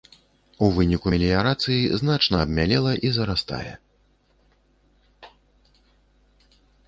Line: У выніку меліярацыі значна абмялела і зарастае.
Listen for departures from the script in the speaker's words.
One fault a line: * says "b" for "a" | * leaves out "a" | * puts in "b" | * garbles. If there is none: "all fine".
all fine